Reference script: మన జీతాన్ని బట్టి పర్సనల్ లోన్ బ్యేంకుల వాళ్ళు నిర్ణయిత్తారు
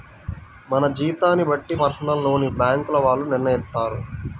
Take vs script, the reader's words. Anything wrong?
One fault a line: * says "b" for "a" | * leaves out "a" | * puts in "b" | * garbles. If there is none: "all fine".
all fine